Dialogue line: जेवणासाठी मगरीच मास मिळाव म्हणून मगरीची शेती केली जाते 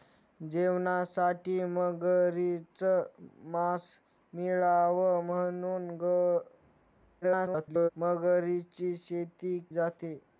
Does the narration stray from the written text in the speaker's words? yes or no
yes